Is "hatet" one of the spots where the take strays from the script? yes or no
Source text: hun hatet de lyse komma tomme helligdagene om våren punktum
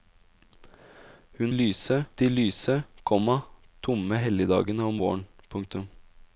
yes